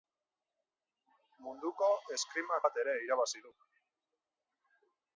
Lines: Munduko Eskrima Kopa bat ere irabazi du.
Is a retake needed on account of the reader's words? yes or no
yes